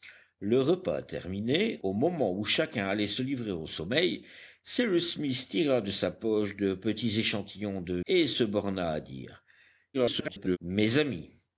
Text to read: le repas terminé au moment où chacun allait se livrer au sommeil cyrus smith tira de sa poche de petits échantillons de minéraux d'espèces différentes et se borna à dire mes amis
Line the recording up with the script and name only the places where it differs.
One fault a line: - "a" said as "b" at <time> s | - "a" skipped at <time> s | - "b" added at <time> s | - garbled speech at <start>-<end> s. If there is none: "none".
- "minéraux d'espèces différentes" skipped at 8.0 s
- garbled speech at 9.9-10.6 s